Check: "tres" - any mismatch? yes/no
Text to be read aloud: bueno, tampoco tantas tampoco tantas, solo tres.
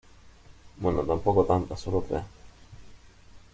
no